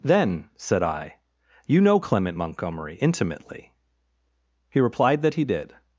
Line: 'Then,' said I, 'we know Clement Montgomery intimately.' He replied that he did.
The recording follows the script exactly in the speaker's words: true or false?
false